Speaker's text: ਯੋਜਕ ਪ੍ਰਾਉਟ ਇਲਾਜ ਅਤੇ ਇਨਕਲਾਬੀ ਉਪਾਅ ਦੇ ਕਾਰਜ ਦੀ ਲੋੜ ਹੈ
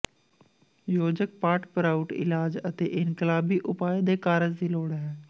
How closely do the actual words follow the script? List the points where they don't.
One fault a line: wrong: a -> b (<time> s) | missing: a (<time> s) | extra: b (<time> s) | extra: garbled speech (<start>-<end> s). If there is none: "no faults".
extra: ਪਾਟ (1.4 s)